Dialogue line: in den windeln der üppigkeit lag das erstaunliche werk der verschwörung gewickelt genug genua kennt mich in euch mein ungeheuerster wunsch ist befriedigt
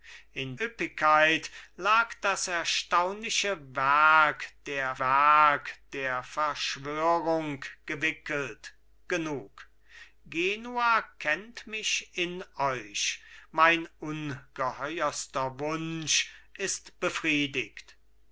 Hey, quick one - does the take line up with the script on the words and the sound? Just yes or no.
no